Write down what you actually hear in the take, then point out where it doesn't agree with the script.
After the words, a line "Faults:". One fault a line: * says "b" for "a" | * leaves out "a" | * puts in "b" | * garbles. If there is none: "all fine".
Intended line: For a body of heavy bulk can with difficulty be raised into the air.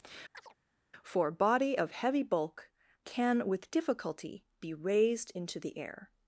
For body of heavy bulk can with difficulty be raised into the air.
Faults:
* leaves out "a"